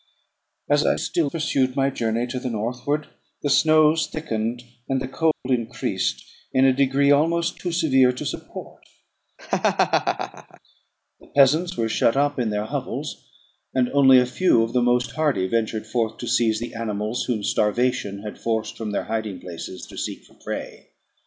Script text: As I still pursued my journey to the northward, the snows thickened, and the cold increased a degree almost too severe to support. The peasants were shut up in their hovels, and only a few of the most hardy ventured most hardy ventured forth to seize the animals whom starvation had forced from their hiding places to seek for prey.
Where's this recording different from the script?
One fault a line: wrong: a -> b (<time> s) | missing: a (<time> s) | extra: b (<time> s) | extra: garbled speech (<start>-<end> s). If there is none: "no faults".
extra: in (6.5 s)
missing: most hardy ventured (15.8 s)